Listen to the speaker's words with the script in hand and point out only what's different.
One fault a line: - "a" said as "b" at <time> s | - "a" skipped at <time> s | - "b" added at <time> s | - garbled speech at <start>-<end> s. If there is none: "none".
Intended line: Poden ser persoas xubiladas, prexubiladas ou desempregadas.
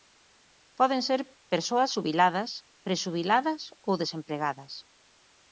none